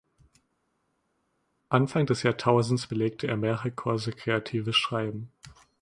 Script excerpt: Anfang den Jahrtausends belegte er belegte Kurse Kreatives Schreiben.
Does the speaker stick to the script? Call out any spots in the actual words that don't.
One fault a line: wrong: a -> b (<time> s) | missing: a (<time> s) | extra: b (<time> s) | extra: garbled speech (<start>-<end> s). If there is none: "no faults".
wrong: den -> des (2.1 s)
wrong: belegte -> mehrere (3.4 s)